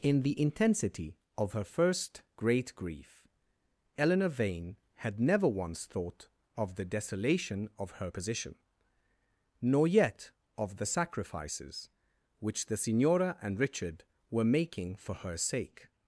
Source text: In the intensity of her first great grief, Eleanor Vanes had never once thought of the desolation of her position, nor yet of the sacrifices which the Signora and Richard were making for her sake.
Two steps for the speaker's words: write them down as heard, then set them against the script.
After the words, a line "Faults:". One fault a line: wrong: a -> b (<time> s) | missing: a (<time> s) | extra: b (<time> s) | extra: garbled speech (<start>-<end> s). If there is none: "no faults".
In the intensity of her first great grief, Eleanor Vane had never once thought of the desolation of her position, nor yet of the sacrifices which the Signora and Richard were making for her sake.
Faults:
wrong: Vanes -> Vane (4.3 s)